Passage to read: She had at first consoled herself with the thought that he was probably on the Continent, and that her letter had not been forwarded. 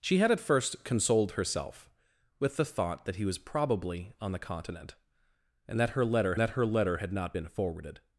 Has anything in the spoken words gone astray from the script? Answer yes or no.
yes